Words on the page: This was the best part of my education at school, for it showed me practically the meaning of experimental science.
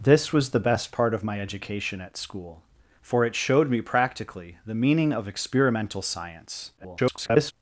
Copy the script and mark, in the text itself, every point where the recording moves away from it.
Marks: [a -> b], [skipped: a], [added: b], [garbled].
This was the best part of my education at school, for it showed me practically the meaning of experimental science. [garbled]